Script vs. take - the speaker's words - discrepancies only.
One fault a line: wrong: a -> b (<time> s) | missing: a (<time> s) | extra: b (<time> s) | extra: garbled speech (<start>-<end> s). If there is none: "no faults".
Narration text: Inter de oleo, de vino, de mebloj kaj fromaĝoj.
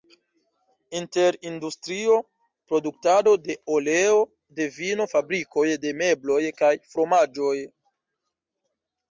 extra: industrio produktado (1.5 s)
extra: fabrikoj (5.1 s)